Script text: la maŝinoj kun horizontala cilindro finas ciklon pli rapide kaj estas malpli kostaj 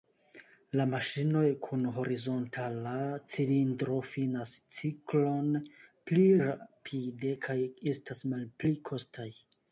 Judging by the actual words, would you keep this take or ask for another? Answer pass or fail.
pass